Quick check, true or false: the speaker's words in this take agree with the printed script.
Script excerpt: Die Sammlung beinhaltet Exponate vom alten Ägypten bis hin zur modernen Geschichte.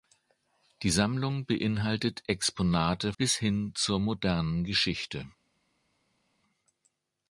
false